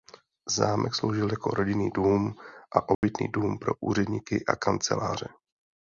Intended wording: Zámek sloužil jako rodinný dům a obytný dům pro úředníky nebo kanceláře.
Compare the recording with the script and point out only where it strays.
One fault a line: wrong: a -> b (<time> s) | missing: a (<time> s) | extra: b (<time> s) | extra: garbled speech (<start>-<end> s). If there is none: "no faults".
wrong: nebo -> a (4.5 s)